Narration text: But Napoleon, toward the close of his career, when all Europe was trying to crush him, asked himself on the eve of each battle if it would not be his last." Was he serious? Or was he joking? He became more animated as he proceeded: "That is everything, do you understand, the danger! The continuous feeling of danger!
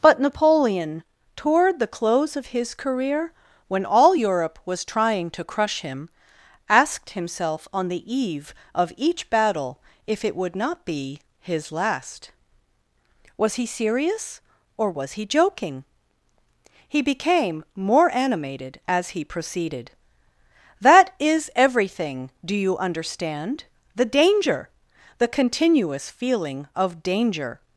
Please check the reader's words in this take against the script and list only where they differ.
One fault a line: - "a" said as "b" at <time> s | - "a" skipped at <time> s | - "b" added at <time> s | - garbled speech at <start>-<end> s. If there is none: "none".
none